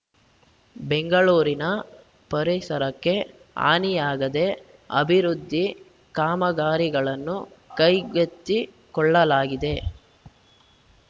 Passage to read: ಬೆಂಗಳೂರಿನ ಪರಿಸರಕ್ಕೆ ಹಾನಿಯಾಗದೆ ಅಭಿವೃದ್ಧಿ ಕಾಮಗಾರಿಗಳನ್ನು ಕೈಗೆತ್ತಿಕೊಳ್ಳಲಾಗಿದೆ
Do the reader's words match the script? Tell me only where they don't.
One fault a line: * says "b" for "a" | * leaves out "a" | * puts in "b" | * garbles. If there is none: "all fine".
all fine